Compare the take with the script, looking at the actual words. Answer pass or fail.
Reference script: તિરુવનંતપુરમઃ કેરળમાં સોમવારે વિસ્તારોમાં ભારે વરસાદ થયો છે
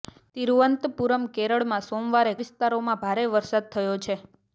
pass